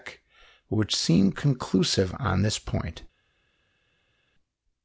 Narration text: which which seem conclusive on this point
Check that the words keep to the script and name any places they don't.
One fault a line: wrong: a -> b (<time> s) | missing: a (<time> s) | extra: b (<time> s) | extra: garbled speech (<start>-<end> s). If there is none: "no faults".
missing: which (0.9 s)